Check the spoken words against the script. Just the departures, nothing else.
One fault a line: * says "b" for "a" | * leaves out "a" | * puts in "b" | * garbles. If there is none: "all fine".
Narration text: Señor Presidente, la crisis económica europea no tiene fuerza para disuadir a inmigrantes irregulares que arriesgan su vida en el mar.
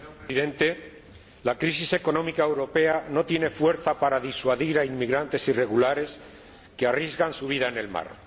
all fine